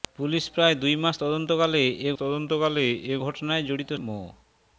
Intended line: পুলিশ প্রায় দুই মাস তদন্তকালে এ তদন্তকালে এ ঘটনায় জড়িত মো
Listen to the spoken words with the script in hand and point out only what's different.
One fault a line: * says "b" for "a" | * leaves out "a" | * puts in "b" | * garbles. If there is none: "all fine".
all fine